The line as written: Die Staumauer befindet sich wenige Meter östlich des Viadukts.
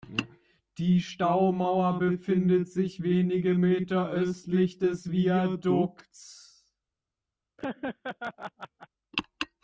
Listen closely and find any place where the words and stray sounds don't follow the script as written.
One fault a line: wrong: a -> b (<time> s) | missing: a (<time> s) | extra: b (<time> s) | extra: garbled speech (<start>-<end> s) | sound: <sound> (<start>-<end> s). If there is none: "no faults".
sound: laugh (7.6-8.9 s)